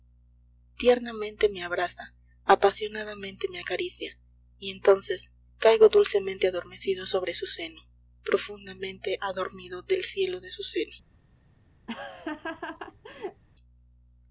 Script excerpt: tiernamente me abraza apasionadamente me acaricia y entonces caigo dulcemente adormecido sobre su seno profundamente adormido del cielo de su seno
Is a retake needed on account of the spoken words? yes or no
no